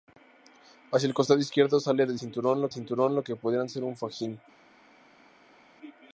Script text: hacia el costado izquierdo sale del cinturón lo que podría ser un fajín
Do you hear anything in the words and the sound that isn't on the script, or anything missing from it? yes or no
yes